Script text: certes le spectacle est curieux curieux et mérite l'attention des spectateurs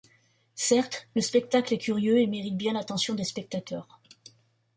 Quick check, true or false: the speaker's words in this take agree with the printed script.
false